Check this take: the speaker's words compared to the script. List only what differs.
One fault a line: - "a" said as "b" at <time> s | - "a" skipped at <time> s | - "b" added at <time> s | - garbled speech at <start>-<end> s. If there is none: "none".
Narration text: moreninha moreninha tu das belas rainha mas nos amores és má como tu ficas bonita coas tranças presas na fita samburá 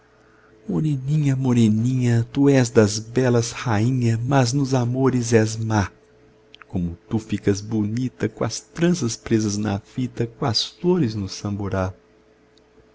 - "és" added at 2.5 s
- "coas flores no" added at 10.2 s